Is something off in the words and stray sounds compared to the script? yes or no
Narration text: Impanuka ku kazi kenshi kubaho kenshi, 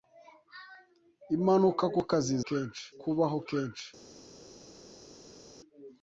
no